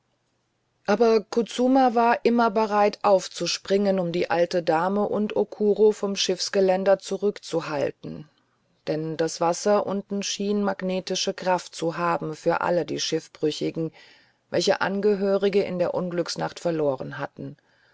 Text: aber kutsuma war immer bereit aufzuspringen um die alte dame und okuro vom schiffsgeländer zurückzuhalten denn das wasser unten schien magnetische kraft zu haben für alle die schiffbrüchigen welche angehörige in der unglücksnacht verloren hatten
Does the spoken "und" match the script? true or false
true